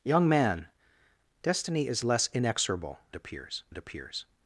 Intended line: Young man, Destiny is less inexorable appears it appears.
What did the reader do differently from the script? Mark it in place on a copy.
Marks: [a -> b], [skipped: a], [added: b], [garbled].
Young man, Destiny is less inexorable appears it appears.